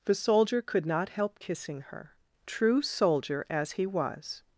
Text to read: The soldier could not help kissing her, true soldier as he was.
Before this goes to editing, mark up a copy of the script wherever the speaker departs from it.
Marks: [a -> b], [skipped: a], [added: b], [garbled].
The soldier could not help kissing her, true soldier as he was.